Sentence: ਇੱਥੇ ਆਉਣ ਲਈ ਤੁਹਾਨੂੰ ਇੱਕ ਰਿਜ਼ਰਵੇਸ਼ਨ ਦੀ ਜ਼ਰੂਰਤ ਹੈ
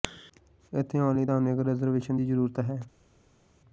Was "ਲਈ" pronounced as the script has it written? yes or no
yes